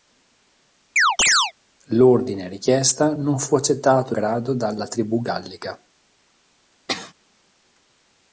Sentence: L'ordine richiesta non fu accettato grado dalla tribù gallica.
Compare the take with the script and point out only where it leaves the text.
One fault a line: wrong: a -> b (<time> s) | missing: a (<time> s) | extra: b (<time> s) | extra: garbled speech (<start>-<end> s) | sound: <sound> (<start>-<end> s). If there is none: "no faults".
sound: chirp (1.0-1.5 s)
sound: sneeze (6.9-7.1 s)